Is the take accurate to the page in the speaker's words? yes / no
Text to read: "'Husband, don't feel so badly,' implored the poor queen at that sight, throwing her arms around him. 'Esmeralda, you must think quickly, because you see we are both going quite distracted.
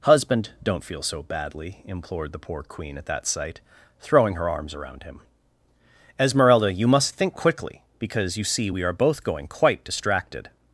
yes